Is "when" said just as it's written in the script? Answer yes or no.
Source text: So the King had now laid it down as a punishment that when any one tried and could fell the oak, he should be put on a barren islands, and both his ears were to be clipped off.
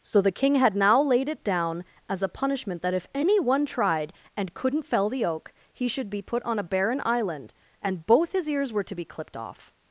no